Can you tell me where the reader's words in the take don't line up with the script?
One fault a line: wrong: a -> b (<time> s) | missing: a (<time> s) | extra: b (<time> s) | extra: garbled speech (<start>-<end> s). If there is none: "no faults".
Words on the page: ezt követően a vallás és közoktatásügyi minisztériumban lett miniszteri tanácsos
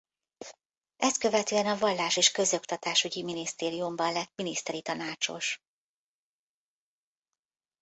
no faults